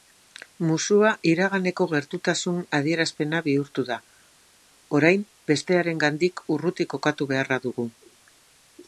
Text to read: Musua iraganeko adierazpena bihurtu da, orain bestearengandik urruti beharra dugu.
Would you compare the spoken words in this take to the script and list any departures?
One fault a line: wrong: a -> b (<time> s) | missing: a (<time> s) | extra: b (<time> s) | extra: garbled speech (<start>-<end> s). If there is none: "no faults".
extra: gertutasun (1.9 s)
extra: kokatu (7.0 s)